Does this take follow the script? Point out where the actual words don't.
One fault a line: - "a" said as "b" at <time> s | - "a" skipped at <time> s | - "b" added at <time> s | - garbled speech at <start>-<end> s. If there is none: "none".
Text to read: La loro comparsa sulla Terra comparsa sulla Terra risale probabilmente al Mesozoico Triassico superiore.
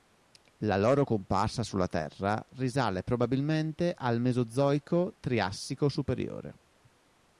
- "comparsa sulla Terra" skipped at 2.4 s